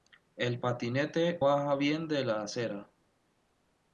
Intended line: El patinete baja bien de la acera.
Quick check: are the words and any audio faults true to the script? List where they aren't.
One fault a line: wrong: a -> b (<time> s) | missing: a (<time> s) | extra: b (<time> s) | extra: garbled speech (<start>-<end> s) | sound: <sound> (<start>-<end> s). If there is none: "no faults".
no faults